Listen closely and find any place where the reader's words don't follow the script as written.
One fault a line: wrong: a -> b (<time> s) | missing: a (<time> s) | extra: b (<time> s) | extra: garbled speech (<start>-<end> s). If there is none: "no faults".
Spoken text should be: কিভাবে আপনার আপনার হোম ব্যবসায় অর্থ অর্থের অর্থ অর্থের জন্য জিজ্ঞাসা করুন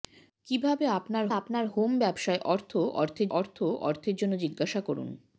no faults